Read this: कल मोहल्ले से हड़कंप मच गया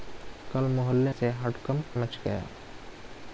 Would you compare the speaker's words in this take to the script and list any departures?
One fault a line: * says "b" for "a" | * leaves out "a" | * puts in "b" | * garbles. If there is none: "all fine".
all fine